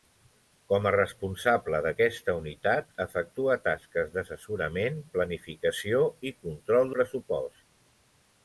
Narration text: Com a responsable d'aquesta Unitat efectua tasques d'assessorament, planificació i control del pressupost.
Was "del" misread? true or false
true